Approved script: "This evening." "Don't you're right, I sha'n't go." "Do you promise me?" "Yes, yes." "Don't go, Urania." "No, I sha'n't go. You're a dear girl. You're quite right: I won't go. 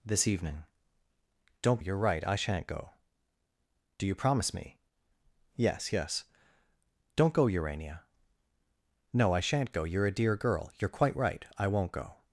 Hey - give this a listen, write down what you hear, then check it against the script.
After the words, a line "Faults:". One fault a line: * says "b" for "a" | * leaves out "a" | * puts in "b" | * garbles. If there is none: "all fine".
"This evening." "Don't you're right, I sha'n't go." "Do you promise me?" "Yes, yes." "Don't go, Urania." "No, I sha'n't go. You're a dear girl. You're quite right: I won't go.
Faults:
all fine